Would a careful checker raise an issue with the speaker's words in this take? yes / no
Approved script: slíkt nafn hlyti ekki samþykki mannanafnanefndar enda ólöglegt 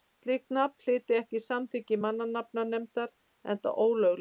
no